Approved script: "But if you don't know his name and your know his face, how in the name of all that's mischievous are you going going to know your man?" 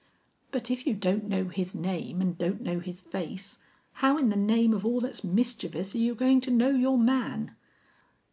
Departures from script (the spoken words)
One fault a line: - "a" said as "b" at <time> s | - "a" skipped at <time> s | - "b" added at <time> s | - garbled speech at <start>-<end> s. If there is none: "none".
- "your" said as "don't" at 2.4 s
- "going" skipped at 6.4 s